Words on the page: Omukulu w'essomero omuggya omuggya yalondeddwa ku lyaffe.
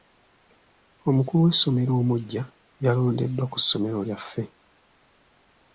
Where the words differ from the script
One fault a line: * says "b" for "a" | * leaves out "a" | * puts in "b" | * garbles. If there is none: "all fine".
* leaves out "omuggya"
* puts in "ssomero"